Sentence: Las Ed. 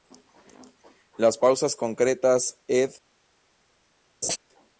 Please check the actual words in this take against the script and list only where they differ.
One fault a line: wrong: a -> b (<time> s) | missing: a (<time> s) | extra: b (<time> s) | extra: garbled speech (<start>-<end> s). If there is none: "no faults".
extra: pausas concretas (1.3 s)